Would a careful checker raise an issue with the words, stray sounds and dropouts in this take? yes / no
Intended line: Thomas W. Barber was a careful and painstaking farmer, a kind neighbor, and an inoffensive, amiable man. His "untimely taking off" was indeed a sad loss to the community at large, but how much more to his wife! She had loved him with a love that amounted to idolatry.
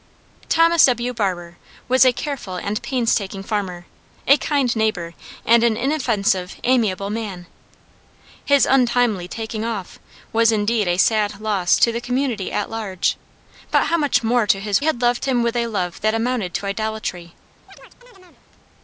yes